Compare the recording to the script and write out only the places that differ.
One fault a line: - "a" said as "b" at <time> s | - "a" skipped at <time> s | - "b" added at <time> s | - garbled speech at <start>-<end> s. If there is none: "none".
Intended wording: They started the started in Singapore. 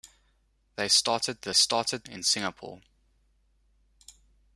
none